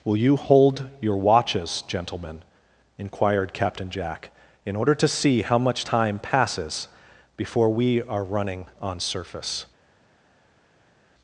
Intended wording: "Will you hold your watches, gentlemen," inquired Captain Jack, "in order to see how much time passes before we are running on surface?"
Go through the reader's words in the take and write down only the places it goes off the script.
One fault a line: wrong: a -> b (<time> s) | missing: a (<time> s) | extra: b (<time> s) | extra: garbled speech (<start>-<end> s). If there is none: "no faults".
no faults